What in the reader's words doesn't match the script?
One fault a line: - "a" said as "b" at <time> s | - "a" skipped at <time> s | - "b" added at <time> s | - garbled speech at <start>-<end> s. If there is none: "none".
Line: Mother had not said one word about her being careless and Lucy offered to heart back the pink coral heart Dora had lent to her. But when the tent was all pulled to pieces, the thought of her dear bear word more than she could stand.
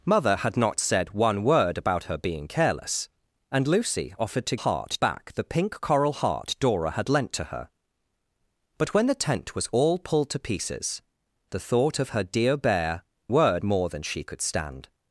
none